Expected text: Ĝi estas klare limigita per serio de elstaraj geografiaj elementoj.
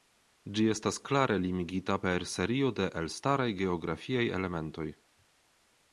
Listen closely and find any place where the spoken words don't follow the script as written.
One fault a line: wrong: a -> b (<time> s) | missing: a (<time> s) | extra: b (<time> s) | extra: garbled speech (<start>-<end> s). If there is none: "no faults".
no faults